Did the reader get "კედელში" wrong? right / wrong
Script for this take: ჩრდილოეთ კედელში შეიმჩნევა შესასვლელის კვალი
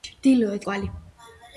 wrong